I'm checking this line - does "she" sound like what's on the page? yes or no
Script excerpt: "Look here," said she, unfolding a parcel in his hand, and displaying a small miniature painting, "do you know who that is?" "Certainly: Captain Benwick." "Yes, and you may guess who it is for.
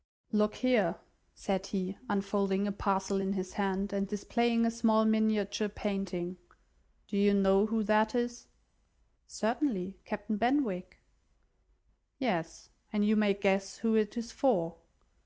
no